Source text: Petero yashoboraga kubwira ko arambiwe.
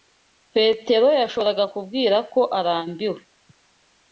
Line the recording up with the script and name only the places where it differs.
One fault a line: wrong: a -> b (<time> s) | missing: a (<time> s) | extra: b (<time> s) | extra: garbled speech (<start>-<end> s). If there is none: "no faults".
no faults